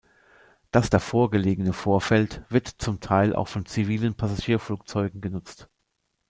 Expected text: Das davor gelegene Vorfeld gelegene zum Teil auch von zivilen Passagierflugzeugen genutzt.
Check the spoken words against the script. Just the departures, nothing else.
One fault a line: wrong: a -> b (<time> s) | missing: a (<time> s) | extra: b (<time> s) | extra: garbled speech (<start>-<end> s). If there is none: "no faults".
wrong: gelegene -> wird (2.5 s)